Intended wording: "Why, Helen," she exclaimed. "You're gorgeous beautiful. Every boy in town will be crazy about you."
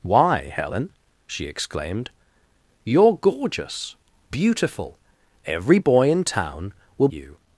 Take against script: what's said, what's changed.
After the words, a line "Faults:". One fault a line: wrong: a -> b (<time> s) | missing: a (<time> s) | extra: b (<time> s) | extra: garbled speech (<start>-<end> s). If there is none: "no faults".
"Why, Helen," she exclaimed. "You're gorgeous beautiful. Every boy in town will you."
Faults:
missing: be crazy about (7.1 s)